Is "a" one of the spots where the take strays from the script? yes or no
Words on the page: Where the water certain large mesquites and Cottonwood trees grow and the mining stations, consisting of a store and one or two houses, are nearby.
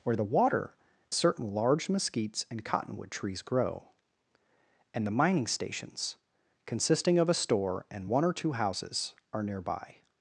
no